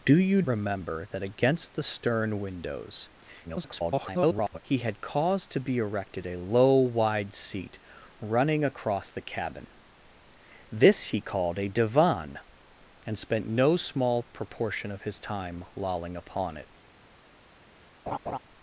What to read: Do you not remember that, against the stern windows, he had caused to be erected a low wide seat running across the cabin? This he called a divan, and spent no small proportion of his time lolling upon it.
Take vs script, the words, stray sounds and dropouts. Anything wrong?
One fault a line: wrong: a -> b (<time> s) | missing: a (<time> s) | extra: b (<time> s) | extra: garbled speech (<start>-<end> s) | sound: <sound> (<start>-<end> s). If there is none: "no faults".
missing: not (0.4 s)
extra: garbled speech (3.4-4.6 s)
sound: laugh (18.1-18.4 s)